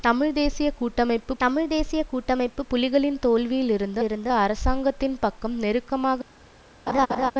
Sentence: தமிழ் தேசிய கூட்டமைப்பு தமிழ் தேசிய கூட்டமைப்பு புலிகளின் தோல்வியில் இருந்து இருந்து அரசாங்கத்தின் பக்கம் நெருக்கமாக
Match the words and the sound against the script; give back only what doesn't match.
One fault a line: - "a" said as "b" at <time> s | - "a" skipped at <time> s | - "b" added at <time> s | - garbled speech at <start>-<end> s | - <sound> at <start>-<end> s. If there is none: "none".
- laugh at 6.9-7.3 s